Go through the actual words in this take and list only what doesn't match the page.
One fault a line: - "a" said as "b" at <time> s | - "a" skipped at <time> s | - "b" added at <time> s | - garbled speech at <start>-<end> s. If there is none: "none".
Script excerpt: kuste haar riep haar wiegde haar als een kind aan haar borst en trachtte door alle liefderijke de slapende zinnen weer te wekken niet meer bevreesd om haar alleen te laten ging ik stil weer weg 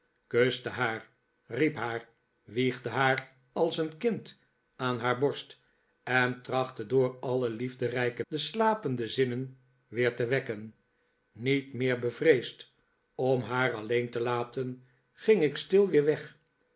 none